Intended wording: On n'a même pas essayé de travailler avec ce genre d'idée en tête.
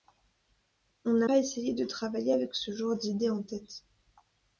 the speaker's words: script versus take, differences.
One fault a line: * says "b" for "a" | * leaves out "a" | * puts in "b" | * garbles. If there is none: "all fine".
* leaves out "même"